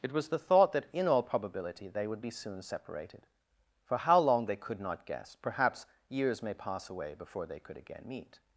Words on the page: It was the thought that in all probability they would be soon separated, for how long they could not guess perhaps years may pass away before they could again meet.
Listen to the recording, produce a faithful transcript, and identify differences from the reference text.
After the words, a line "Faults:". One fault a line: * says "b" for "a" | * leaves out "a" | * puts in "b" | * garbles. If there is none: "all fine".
It was the thought that in all probability they would be soon separated, for how long they could not guess perhaps years may pass away before they could again meet.
Faults:
all fine